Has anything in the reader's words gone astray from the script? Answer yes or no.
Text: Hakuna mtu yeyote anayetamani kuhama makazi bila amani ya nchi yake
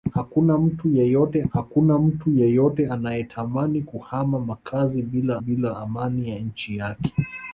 yes